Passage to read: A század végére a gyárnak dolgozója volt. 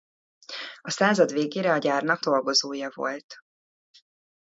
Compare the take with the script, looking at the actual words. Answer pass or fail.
pass